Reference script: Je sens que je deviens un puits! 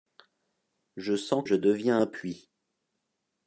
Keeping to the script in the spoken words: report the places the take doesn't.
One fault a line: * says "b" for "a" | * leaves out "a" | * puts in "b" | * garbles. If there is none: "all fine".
* leaves out "que"